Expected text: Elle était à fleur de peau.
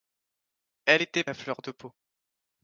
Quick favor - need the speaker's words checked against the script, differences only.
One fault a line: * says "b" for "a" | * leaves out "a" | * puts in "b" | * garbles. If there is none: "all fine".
all fine